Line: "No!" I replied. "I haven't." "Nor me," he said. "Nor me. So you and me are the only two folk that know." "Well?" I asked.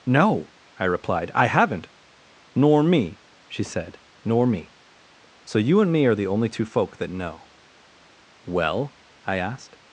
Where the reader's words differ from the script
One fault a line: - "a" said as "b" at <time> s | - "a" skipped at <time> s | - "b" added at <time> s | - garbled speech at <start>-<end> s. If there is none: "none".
- "he" said as "she" at 3.5 s